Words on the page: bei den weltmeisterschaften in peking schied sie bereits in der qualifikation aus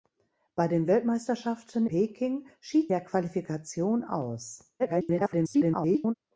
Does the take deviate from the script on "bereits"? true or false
true